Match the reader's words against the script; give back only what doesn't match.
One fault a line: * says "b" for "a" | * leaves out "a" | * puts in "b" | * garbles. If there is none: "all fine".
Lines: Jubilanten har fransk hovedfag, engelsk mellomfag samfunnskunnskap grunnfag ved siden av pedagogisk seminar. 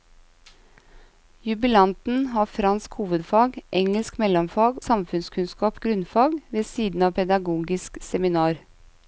all fine